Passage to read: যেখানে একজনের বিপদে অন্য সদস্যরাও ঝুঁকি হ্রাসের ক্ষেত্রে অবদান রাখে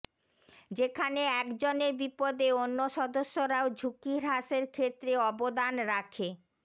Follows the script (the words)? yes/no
yes